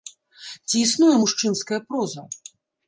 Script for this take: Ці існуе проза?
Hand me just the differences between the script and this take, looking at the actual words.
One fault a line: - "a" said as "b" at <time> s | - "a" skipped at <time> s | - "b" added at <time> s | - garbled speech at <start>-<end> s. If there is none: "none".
- "мужчынская" added at 1.2 s